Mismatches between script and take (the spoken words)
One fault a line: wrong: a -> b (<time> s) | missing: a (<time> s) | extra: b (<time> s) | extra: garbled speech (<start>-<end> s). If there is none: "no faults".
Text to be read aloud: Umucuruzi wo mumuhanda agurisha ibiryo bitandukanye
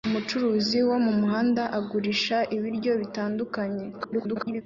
extra: garbled speech (3.9-4.6 s)